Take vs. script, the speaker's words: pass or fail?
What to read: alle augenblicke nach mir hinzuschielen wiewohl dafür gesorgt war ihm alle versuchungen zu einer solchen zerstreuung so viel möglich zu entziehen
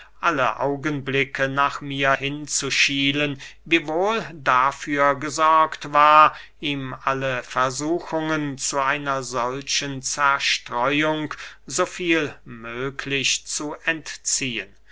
pass